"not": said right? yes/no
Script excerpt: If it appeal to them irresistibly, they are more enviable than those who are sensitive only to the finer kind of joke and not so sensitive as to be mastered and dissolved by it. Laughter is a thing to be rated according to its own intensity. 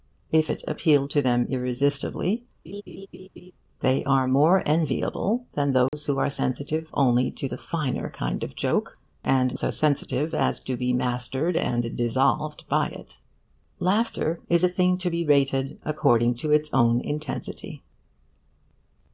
no